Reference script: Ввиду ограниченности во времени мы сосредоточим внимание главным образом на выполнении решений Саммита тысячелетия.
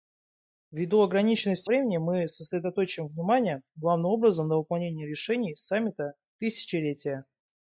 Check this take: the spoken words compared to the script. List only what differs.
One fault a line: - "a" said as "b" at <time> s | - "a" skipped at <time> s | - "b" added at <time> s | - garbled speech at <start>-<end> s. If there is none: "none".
- "во" skipped at 1.7 s